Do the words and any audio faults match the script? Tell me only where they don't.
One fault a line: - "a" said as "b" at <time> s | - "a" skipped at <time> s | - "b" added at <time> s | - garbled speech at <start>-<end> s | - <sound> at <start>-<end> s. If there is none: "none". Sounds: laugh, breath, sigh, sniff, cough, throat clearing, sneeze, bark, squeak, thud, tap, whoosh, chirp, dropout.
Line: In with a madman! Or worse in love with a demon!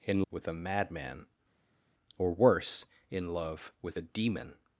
none